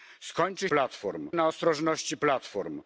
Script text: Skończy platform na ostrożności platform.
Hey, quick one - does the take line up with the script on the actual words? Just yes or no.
yes